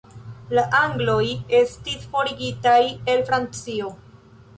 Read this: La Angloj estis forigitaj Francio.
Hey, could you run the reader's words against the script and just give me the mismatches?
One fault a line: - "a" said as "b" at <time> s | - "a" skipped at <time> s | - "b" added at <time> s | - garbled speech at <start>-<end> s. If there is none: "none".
- "el" added at 3.1 s